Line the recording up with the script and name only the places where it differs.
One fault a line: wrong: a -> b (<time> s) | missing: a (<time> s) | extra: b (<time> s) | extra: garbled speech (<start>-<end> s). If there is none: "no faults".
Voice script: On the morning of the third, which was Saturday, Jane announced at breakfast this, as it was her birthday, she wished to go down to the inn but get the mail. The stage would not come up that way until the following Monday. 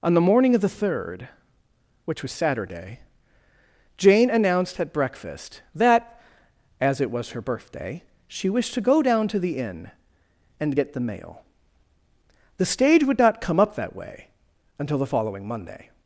wrong: this -> that (5.8 s)
wrong: but -> and (10.6 s)